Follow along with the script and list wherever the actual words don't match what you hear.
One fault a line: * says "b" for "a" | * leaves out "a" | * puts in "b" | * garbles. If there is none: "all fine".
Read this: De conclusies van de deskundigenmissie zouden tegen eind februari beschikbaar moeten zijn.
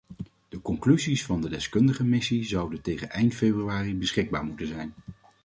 all fine